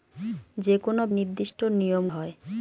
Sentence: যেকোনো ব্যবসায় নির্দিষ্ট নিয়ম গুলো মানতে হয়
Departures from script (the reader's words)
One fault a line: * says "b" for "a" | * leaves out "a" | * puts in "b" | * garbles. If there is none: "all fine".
* leaves out "ব্যবসায়"
* leaves out "গুলো মানতে"